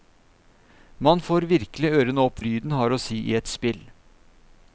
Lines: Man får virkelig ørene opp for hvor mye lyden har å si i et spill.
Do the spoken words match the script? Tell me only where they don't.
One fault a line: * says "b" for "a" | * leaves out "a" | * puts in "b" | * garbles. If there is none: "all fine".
* leaves out "for hvor mye"